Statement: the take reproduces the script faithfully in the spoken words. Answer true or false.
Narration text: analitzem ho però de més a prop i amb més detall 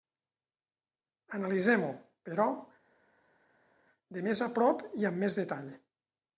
true